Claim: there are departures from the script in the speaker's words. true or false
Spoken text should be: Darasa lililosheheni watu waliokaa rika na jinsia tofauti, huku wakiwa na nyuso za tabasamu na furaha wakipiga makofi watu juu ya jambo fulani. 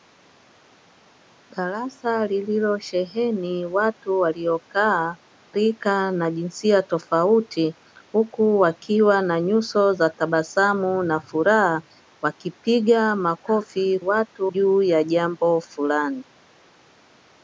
false